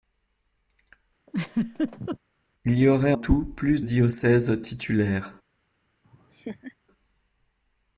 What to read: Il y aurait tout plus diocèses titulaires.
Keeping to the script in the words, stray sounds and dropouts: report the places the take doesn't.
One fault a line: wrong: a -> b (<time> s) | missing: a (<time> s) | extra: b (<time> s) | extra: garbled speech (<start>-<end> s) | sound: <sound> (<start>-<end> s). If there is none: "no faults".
sound: laugh (1.3-2.2 s)
sound: laugh (6.0-6.8 s)